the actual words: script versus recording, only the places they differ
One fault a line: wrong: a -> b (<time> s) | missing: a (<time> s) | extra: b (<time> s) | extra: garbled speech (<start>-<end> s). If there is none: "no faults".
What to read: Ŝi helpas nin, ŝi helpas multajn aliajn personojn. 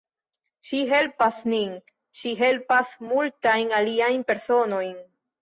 no faults